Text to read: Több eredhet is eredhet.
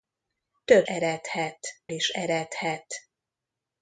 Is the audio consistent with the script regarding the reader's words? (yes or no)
yes